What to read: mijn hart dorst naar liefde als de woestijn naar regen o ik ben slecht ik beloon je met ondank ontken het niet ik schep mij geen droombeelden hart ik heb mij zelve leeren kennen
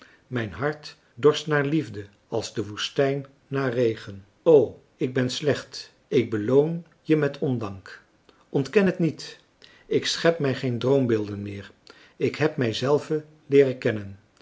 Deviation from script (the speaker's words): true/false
true